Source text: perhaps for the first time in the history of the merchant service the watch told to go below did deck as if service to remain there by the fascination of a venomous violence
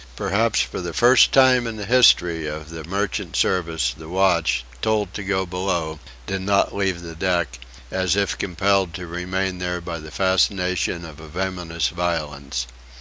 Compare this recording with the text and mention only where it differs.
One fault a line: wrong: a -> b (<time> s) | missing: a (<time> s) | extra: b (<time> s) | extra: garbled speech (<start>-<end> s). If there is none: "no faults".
extra: not leave the (6.4 s)
wrong: service -> compelled (8.3 s)